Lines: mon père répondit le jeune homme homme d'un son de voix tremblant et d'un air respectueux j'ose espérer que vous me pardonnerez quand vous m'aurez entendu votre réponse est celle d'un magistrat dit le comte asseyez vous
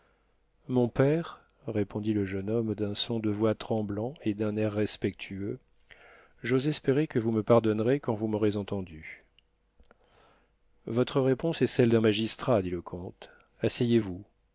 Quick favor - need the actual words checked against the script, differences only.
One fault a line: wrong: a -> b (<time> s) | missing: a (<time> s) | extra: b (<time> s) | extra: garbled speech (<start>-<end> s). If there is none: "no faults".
missing: homme (2.7 s)